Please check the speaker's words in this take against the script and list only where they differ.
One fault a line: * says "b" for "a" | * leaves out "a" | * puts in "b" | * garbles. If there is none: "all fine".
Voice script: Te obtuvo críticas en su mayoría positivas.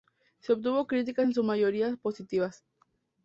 * says "Se" for "Te"